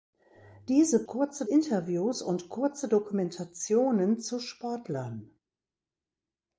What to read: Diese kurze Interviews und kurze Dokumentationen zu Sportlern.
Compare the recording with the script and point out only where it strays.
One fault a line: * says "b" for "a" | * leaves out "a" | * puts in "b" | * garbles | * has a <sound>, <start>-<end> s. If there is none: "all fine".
all fine